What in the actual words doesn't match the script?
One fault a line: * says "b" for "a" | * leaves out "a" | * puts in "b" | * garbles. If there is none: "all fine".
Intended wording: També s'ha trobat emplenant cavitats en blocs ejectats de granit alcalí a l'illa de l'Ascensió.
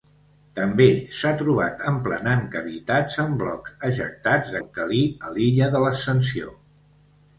* leaves out "granit"